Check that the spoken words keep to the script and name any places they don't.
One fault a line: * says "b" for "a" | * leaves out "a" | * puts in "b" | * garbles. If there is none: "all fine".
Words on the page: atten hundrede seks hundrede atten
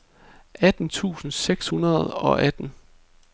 * says "tusind" for "hundrede"
* puts in "og"